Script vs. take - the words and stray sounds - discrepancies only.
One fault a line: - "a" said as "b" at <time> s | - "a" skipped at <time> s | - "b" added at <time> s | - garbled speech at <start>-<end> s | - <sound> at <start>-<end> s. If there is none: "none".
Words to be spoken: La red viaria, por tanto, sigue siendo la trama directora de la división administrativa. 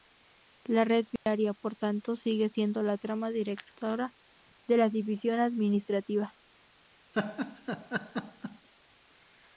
- dropout at 1.2-1.3 s
- laugh at 7.1-8.7 s